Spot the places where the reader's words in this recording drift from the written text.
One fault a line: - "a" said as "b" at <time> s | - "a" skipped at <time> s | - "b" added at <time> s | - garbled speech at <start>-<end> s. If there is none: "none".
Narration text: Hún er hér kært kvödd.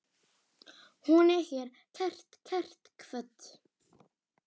- "kært" added at 2.5 s